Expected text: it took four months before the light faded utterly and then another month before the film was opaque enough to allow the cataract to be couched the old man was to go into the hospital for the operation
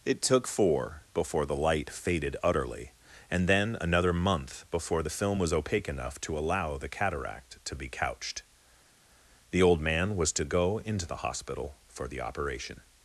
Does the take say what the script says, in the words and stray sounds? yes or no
no